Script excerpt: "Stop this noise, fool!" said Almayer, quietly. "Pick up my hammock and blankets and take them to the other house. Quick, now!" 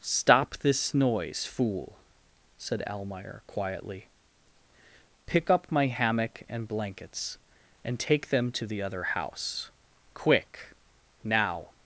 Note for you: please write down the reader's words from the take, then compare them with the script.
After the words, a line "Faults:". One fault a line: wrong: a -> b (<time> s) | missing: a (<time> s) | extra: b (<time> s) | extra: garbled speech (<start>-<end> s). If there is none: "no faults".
"Stop this noise, fool!" said Almayer, quietly. "Pick up my hammock and blankets and take them to the other house. Quick, now!"
Faults:
no faults